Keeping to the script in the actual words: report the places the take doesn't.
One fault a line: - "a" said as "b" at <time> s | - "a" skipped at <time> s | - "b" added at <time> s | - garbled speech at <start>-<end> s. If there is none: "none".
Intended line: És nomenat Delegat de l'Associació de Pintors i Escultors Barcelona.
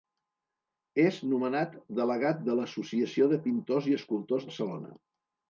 none